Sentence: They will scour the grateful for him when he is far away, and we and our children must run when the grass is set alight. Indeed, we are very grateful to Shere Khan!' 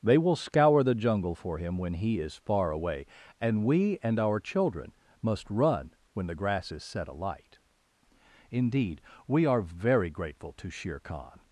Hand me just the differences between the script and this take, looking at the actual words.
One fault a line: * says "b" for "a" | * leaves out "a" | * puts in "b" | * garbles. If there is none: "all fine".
* says "jungle" for "grateful"